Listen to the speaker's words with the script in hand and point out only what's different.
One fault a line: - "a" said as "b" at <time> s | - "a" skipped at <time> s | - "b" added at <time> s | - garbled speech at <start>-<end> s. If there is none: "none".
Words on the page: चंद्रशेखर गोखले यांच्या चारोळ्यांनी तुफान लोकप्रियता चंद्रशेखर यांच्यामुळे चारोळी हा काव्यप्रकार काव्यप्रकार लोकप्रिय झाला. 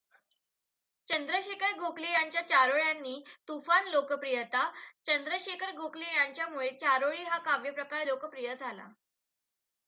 - "गोखले" added at 5.8 s
- "काव्यप्रकार" skipped at 8.1 s